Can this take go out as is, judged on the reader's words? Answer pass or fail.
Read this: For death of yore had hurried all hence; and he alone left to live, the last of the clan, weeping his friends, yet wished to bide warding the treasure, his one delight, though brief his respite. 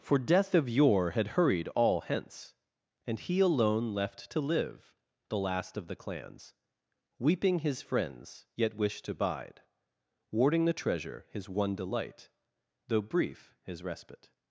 fail